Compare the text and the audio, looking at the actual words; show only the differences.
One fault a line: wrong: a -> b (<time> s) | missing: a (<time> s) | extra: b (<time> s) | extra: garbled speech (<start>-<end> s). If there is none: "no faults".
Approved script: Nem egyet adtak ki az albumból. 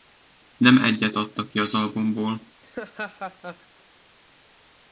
no faults